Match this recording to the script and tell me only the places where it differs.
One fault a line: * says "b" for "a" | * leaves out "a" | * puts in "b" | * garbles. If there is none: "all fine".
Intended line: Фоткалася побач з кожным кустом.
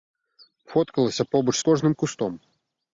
all fine